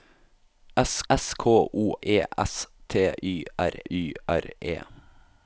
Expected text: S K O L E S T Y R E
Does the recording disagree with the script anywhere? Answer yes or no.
yes